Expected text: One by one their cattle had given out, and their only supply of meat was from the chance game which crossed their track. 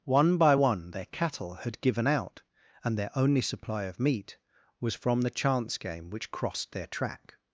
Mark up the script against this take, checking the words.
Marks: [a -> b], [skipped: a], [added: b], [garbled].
One by one their cattle had given out, and their only supply of meat was from the chance game which crossed their track.